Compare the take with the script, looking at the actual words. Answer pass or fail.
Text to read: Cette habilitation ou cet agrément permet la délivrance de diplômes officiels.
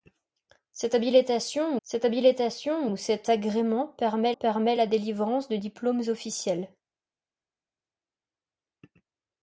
fail